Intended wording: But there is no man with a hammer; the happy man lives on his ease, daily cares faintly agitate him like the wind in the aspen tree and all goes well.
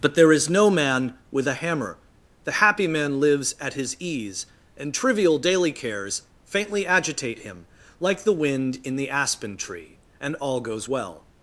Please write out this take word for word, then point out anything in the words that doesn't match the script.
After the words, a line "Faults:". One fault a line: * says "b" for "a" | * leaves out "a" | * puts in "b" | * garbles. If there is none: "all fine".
But there is no man with a hammer; the happy man lives at his ease, and trivial daily cares faintly agitate him like the wind in the aspen tree and all goes well.
Faults:
* says "at" for "on"
* puts in "and trivial"